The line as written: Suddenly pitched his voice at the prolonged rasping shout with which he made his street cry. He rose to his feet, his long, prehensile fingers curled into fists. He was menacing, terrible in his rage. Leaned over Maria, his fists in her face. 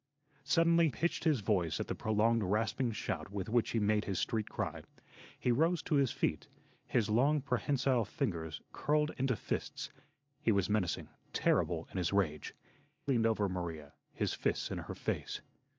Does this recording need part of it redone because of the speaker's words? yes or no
no